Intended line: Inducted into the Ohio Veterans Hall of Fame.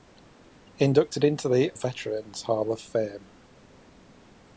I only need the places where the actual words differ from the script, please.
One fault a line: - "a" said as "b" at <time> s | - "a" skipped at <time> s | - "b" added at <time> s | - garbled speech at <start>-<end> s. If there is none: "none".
- "Ohio" skipped at 1.7 s